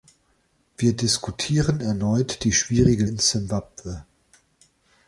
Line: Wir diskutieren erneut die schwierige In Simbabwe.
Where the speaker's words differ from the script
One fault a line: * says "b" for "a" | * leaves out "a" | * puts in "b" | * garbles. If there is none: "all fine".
all fine